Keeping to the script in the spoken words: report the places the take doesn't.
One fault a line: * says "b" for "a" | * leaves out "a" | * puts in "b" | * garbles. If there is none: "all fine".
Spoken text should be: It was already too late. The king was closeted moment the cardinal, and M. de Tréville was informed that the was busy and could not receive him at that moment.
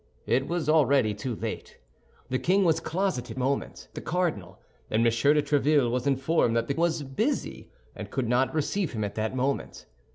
all fine